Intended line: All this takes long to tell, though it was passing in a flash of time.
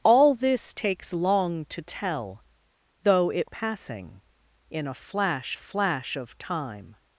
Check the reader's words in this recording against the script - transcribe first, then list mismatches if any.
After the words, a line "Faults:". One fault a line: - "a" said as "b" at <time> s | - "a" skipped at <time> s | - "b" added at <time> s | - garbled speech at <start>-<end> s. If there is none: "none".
All this takes long to tell, though it passing in a flash flash of time.
Faults:
- "was" skipped at 3.5 s
- "flash" added at 5.6 s